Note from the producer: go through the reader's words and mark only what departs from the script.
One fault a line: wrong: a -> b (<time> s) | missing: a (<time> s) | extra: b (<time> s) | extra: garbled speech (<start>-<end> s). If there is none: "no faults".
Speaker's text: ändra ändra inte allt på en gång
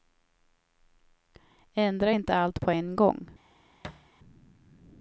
missing: ändra (2.1 s)